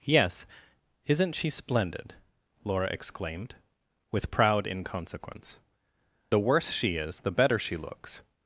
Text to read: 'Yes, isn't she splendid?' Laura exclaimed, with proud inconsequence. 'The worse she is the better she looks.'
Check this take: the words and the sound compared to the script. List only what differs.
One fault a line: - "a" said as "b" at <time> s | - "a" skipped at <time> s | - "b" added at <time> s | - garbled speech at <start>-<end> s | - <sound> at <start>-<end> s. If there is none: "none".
none